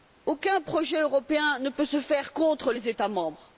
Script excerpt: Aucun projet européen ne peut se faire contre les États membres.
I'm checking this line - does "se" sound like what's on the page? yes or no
yes